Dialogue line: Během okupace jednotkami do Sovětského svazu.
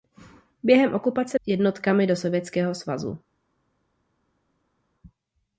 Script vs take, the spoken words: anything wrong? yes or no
no